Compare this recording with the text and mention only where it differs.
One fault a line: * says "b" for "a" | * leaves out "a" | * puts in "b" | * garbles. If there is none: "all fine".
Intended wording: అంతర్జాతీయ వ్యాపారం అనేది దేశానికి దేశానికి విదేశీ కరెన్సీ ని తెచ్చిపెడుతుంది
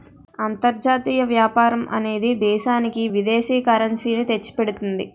* leaves out "దేశానికి"